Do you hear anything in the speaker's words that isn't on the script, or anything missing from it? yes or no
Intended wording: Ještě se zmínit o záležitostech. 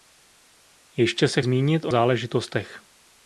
no